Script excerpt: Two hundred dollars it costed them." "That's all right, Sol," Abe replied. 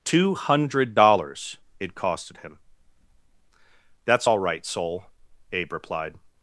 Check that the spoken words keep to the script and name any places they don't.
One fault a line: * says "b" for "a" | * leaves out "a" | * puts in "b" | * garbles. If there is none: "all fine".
* says "him" for "them"